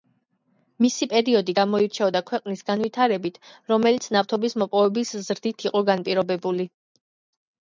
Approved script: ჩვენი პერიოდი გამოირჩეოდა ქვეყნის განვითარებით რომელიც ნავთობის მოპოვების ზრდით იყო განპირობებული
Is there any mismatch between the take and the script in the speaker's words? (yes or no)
yes